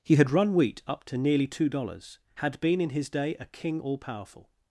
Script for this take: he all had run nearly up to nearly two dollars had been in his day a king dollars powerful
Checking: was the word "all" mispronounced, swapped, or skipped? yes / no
yes